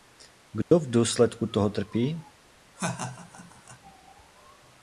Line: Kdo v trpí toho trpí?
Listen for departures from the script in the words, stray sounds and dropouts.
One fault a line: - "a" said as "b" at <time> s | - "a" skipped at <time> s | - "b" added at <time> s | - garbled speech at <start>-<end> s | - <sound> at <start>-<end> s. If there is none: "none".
- dropout at 0.6-0.7 s
- "trpí" said as "důsledku" at 0.9 s
- laugh at 2.8-3.8 s